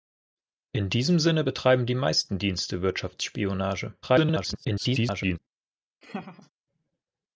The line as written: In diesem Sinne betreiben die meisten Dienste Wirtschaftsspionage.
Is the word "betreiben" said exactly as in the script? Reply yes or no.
yes